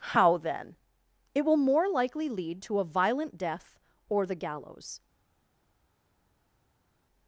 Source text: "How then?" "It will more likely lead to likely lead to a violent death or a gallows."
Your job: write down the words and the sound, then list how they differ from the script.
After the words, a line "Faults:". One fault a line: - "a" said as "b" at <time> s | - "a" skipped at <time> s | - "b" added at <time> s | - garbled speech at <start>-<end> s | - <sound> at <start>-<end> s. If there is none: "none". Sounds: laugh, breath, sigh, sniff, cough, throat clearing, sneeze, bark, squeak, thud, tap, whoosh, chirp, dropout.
"How then?" "It will more likely lead to a violent death or the gallows."
Faults:
- "likely lead to" skipped at 2.8 s
- "a" said as "the" at 4.2 s